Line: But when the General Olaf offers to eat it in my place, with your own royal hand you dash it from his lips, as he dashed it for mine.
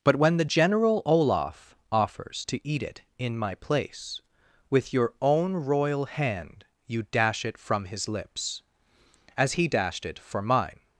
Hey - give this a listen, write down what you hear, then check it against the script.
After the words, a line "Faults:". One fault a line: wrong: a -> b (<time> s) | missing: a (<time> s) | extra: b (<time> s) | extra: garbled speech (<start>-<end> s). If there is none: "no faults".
But when the General Olaf offers to eat it in my place, with your own royal hand you dash it from his lips, as he dashed it for mine.
Faults:
no faults